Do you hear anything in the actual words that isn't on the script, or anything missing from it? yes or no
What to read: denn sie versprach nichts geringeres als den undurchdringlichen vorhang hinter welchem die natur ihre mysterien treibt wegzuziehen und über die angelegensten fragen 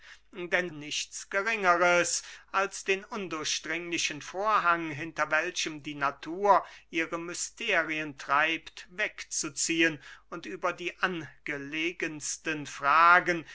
yes